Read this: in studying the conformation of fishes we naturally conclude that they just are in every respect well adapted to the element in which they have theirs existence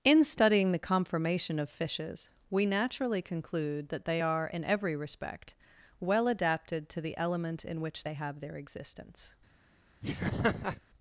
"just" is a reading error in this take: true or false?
true